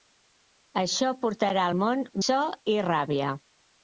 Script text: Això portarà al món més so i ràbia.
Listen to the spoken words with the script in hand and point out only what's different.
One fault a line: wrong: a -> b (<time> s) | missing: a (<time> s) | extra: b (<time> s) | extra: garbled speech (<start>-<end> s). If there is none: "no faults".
missing: més (2.0 s)